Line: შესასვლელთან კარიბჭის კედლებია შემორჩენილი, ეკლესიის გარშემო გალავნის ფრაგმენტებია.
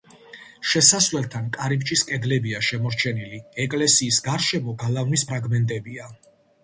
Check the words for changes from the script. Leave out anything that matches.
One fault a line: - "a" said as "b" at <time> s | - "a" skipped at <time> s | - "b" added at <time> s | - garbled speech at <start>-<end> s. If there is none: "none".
none